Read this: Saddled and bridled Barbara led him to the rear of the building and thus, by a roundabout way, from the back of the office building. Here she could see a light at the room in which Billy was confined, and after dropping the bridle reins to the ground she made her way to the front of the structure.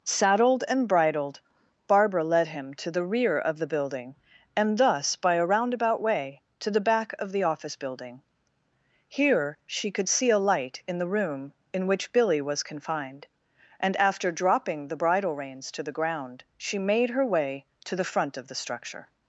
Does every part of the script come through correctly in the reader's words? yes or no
no